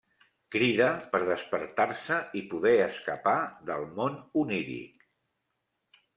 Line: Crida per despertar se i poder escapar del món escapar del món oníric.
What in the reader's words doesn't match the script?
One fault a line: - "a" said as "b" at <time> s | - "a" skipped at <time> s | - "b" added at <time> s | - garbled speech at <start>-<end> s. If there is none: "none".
- "escapar del món" skipped at 4.2 s